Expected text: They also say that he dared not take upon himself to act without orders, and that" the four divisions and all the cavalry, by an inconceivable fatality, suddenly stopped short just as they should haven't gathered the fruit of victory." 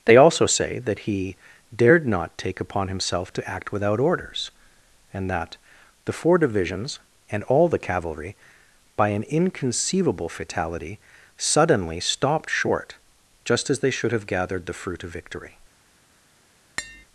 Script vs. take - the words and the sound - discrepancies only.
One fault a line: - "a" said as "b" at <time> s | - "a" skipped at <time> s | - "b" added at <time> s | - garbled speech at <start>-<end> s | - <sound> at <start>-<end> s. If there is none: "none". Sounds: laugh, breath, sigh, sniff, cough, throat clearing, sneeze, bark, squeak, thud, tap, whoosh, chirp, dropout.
- "haven't" said as "have" at 14.1 s
- tap at 16.8-17.1 s